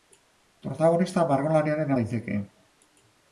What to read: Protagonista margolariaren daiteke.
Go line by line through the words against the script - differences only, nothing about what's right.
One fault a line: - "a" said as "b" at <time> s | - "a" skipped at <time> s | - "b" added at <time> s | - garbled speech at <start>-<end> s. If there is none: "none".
none